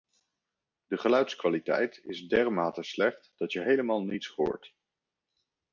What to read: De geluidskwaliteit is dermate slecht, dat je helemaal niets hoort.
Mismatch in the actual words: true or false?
false